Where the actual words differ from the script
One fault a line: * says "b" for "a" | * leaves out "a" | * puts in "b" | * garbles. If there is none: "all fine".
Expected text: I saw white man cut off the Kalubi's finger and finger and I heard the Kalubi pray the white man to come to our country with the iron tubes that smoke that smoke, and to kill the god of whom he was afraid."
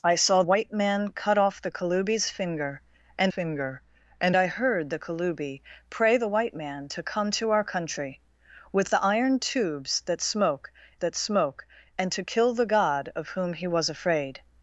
all fine